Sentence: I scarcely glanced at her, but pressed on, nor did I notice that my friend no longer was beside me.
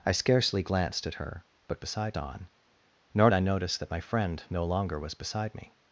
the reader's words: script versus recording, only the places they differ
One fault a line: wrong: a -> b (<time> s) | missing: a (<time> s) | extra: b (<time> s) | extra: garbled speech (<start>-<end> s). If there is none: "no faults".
wrong: pressed -> beside (1.8 s)
missing: did (3.3 s)